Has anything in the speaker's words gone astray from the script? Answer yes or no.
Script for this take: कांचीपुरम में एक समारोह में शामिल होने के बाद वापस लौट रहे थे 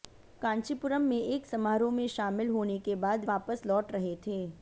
no